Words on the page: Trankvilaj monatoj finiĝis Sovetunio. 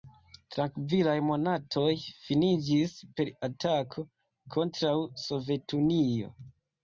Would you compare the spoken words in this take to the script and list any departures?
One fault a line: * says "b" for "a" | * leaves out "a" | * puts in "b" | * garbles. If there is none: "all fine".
* puts in "per atako kontraŭ"